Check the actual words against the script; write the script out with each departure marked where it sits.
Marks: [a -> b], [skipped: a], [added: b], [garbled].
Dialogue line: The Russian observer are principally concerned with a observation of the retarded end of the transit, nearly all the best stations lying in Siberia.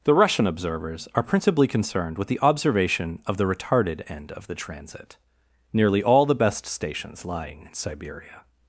The Russian [observer -> observers] are principally concerned with [a -> the] observation of the retarded end of the transit, nearly all the best stations lying in Siberia.